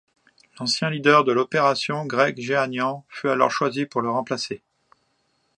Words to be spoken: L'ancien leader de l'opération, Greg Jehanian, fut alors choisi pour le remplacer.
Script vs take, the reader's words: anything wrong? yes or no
no